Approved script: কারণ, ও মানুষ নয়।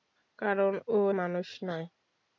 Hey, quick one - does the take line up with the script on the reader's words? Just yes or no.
yes